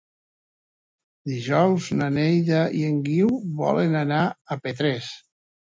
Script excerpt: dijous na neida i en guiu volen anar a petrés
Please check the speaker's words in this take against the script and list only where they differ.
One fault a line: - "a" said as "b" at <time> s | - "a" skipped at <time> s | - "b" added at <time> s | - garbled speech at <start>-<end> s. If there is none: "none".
none